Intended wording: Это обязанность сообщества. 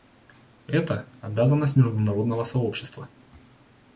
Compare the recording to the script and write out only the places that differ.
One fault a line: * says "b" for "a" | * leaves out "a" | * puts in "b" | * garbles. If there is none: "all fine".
* puts in "международного"